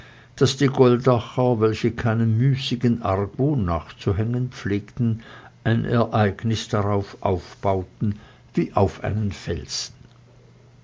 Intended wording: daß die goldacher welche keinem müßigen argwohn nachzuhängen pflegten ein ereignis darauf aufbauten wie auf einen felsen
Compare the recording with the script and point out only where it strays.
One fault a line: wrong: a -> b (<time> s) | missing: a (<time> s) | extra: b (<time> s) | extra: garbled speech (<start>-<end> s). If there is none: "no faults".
no faults